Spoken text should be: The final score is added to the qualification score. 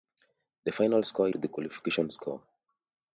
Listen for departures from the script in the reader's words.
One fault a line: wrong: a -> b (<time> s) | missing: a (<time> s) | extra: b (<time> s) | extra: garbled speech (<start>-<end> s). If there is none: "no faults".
missing: is added (1.3 s)